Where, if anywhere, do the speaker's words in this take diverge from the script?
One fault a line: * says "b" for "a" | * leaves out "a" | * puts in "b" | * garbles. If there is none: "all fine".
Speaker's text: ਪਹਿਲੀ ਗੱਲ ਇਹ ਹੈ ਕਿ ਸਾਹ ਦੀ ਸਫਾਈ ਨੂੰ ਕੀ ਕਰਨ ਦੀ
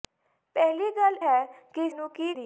* leaves out "ਇਹ"
* leaves out "ਸਾਹ ਦੀ ਸਫਾਈ"
* leaves out "ਕਰਨ"